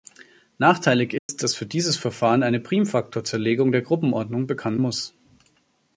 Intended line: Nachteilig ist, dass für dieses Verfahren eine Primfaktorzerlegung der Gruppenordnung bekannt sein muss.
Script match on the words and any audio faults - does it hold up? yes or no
no